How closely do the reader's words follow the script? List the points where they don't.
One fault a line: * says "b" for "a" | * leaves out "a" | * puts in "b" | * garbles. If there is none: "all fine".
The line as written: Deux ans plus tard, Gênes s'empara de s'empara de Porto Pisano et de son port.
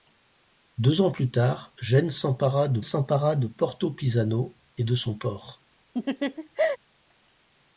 all fine